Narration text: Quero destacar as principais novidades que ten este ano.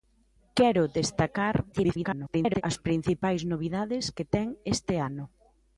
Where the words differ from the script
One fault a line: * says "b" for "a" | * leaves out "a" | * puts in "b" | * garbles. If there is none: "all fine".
* garbles